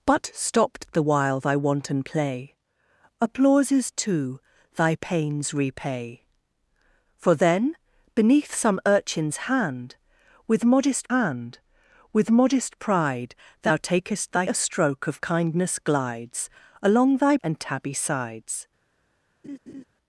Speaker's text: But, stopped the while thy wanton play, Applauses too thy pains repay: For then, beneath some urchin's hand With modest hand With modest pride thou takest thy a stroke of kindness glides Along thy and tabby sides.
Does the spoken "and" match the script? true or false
true